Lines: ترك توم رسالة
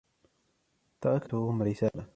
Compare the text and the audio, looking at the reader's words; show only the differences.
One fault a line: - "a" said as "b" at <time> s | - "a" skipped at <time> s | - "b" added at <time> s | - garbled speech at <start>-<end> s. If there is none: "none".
none